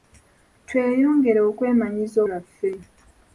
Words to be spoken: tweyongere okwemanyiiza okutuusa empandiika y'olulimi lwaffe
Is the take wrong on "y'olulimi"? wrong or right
wrong